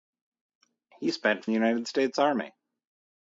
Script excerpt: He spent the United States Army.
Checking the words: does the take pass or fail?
pass